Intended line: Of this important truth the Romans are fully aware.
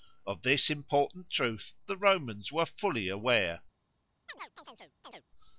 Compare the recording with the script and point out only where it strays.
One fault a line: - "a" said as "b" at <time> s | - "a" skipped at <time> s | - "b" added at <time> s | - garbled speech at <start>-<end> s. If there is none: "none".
- "are" said as "were" at 2.5 s